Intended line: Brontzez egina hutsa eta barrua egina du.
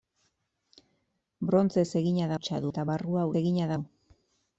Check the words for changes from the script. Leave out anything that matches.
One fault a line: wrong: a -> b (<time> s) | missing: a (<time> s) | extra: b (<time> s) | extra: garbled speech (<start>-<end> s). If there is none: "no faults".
no faults